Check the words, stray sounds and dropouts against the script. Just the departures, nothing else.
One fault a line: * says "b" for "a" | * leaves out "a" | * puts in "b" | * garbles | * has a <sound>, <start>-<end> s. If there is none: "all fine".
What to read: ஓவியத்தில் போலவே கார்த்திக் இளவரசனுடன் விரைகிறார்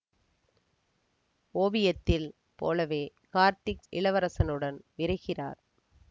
all fine